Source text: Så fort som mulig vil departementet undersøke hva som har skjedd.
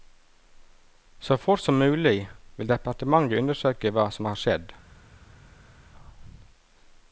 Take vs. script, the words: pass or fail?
pass